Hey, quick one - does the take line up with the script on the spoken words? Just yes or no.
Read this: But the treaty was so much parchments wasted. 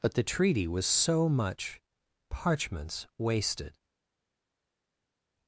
yes